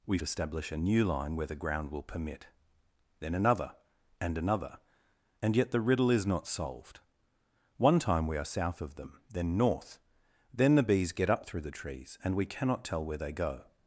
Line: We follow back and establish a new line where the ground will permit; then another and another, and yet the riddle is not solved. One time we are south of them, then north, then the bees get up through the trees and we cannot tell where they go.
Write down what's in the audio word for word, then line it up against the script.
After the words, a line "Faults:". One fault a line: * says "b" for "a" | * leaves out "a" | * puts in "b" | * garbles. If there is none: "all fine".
We establish a new line where the ground will permit; then another and another, and yet the riddle is not solved. One time we are south of them, then north, then the bees get up through the trees and we cannot tell where they go.
Faults:
* leaves out "follow back and"